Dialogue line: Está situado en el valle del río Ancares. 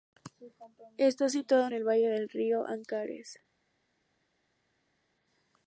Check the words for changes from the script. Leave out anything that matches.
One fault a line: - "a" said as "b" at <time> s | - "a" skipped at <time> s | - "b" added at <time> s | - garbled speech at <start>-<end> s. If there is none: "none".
none